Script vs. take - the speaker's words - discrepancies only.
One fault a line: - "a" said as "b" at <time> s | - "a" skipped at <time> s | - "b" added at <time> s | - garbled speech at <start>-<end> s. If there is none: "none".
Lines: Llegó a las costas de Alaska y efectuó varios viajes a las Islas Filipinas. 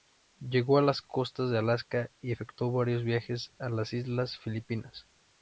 none